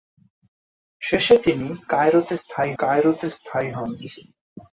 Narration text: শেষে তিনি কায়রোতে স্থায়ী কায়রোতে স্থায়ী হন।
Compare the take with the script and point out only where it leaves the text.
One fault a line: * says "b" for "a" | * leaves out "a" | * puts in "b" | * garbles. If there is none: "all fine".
all fine